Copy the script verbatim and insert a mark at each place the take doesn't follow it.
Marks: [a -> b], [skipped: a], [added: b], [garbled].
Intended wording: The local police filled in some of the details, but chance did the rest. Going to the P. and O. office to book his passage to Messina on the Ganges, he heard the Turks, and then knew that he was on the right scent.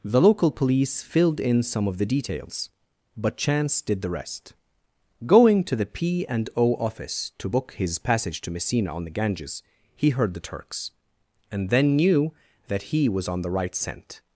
The local police filled in some of the details, but chance did the rest. Going to the P. and O. office to book his passage to Messina on the Ganges, he heard the Turks, and then knew that he was on the right scent.